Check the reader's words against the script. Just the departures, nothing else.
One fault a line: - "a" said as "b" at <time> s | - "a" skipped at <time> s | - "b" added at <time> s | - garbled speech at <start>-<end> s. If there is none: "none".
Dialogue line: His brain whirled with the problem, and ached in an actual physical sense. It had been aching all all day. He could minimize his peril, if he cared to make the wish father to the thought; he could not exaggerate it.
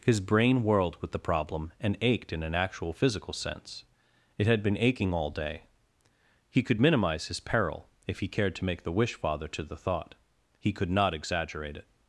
- "all" skipped at 5.3 s